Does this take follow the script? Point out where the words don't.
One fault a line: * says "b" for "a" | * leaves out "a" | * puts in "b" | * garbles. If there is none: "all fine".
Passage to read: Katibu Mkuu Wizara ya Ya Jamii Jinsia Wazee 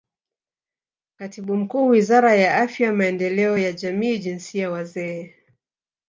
* puts in "Afya Maendeleo"